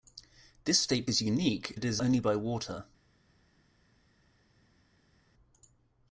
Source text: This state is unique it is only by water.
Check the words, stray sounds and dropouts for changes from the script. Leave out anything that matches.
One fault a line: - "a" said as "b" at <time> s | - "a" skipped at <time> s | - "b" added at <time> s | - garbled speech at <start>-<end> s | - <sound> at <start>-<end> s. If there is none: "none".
none